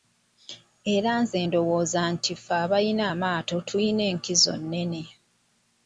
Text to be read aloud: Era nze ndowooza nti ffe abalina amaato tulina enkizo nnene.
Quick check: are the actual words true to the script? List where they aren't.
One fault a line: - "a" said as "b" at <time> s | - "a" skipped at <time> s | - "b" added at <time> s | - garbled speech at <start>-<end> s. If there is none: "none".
none